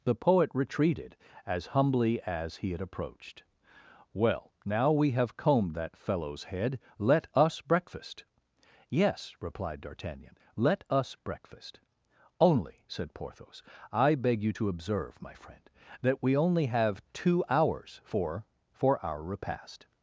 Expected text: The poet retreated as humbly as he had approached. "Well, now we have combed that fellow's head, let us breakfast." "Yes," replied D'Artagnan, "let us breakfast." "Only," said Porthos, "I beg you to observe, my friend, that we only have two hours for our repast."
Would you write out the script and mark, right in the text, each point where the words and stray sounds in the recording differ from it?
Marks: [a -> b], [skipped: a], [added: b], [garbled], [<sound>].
The poet retreated as humbly as he had approached. "Well, now we have combed that fellow's head, let us breakfast." "Yes," replied D'Artagnan, "let us breakfast." "Only," said Porthos, "I beg you to observe, my friend, that we only have two hours for [added: for] our repast."